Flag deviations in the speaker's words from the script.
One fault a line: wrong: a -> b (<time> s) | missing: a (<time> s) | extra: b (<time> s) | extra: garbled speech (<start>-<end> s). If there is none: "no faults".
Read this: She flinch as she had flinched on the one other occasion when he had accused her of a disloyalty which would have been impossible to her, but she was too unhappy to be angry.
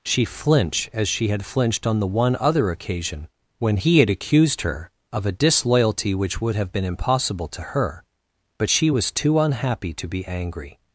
no faults